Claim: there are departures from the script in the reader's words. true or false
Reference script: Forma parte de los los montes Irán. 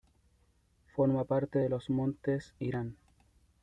true